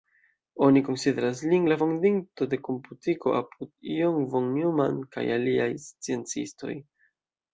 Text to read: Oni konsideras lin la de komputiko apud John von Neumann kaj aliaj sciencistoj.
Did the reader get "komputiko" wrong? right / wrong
right